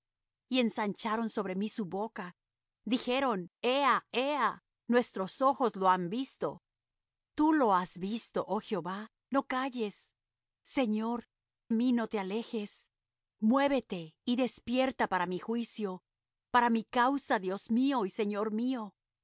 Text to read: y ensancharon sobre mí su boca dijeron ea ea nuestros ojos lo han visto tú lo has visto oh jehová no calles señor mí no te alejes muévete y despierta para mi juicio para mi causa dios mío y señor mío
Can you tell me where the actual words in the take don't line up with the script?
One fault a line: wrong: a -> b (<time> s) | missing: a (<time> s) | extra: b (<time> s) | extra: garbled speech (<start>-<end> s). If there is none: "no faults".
no faults